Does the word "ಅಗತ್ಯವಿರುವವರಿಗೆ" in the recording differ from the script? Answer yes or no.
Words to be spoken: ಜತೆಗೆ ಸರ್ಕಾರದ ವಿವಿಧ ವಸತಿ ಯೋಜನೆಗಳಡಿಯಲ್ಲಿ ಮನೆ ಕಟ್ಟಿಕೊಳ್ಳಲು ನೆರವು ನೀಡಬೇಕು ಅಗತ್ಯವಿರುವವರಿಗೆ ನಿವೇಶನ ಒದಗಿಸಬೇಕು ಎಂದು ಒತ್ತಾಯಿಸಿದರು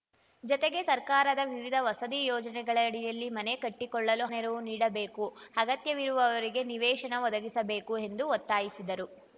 no